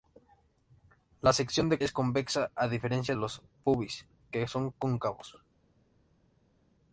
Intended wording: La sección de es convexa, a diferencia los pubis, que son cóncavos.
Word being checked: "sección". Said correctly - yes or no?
yes